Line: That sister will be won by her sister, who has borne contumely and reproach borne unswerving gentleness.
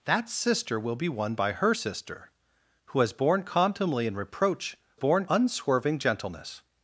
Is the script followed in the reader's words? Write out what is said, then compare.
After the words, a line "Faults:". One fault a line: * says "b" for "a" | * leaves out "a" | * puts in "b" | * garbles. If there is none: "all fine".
That sister will be won by her sister, who has borne contumely and reproach borne unswerving gentleness.
Faults:
all fine